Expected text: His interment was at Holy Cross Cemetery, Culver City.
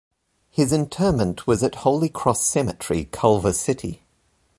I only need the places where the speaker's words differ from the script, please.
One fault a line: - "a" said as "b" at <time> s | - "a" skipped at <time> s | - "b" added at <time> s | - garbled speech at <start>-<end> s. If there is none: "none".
none